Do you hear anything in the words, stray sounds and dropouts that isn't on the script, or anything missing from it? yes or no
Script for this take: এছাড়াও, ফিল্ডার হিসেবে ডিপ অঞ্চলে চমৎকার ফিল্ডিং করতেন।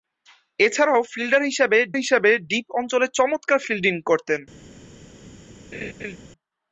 yes